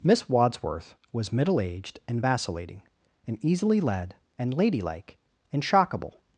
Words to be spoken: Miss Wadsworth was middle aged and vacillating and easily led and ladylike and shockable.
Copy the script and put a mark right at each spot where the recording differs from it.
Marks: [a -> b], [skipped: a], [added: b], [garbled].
Miss Wadsworth was middle aged and vacillating and easily led and ladylike and shockable.